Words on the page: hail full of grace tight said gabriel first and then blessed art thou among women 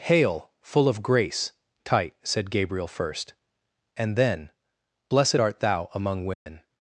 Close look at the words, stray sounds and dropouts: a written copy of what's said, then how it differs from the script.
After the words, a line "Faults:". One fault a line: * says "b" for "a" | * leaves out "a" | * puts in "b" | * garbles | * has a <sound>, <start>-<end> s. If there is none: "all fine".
hail full of grace tight said gabriel first and then blessed art thou among women
Faults:
* has a dropout, 6.3-6.5 s